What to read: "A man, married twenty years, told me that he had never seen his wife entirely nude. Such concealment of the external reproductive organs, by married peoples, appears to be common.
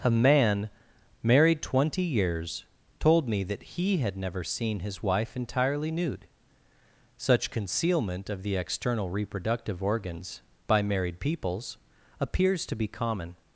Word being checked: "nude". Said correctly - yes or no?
yes